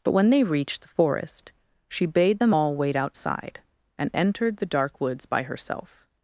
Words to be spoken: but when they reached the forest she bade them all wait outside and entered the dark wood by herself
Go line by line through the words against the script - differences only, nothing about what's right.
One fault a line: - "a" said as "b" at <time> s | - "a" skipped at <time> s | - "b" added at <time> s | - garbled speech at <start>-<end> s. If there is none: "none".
- "wood" said as "woods" at 5.0 s